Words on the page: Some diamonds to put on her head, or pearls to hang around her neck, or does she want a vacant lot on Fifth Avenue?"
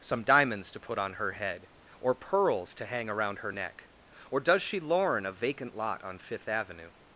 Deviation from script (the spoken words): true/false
true